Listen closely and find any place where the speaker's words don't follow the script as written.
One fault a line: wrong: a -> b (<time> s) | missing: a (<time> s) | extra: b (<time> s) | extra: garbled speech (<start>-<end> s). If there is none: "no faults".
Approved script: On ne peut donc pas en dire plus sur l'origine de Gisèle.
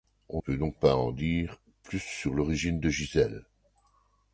missing: ne (0.4 s)